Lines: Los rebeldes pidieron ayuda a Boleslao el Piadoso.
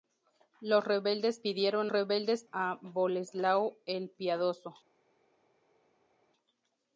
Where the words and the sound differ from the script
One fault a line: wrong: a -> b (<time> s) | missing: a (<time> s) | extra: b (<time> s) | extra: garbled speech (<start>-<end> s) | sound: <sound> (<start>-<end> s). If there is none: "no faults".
wrong: ayuda -> rebeldes (1.9 s)